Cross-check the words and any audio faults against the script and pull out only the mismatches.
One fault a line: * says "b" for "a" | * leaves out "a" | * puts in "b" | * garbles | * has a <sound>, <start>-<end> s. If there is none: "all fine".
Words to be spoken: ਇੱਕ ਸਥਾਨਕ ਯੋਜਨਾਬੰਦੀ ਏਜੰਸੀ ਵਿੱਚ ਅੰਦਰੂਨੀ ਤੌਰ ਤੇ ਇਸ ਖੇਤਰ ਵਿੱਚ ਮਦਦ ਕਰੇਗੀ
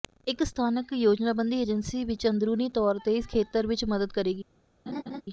* has a laugh, 4.9-5.2 s